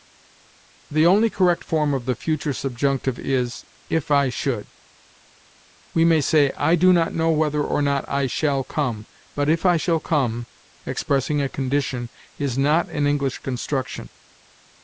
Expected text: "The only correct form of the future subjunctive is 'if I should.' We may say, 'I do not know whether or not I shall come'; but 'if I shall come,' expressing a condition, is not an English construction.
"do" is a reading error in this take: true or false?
false